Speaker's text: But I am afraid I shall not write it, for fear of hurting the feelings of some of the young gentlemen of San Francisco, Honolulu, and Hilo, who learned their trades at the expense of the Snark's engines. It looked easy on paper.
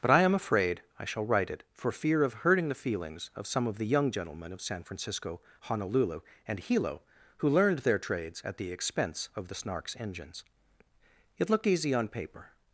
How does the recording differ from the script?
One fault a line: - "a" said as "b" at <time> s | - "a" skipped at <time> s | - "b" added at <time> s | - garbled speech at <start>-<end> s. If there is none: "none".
- "not" skipped at 1.2 s